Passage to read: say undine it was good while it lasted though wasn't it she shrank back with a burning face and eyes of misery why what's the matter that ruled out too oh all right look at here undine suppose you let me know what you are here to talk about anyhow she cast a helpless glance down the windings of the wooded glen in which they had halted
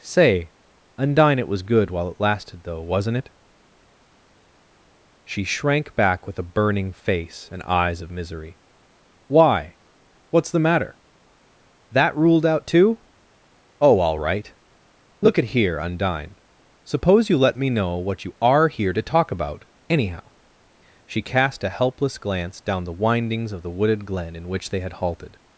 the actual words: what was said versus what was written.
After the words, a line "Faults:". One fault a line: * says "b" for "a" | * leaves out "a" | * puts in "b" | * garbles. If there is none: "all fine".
say undine it was good while it lasted though wasn't it she shrank back with a burning face and eyes of misery why what's the matter that ruled out too oh all right look at here undine suppose you let me know what you are here to talk about anyhow she cast a helpless glance down the windings of the wooded glen in which they had halted
Faults:
all fine